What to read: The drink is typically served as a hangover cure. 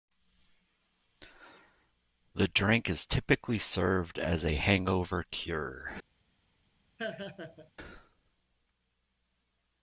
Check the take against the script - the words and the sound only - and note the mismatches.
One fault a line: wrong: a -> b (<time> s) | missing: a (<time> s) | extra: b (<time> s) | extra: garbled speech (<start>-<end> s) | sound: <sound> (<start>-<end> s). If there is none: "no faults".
sound: laugh (7.0-7.7 s)